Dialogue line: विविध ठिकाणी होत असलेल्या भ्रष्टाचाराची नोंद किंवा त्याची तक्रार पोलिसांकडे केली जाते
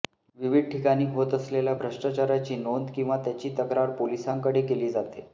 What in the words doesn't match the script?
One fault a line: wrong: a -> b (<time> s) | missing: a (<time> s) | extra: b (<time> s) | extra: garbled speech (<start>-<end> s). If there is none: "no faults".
no faults